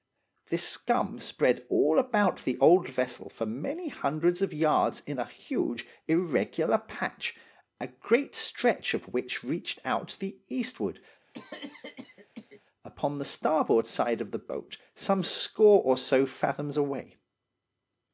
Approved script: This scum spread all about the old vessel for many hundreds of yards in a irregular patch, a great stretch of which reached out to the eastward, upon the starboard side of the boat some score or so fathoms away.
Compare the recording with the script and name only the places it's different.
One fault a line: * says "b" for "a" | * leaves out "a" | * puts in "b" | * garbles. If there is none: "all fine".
* puts in "huge"